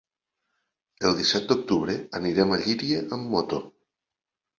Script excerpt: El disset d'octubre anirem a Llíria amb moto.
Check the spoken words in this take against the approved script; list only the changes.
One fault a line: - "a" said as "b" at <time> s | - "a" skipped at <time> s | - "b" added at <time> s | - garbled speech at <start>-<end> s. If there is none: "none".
none